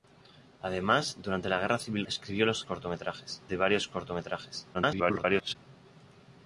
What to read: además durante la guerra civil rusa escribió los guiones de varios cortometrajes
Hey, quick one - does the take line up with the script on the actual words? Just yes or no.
no